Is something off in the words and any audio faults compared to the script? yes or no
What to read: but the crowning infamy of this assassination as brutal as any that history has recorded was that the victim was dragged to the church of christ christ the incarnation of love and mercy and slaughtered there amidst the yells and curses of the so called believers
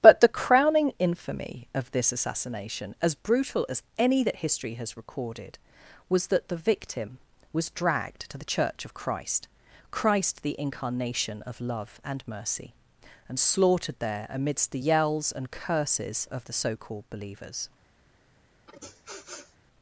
yes